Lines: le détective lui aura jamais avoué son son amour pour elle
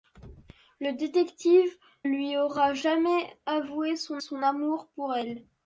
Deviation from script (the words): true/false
false